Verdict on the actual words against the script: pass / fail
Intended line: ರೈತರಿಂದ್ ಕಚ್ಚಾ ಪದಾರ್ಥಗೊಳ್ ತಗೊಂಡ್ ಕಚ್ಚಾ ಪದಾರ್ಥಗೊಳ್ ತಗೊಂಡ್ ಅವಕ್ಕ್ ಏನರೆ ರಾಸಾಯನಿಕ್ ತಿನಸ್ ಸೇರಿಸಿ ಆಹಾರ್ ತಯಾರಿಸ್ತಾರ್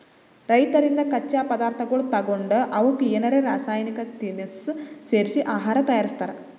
fail